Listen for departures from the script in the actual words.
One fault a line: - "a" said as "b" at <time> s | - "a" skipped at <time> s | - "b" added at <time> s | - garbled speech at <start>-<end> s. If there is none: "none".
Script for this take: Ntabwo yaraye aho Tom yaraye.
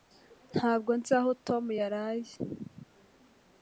- "yaraye" said as "nzi" at 1.0 s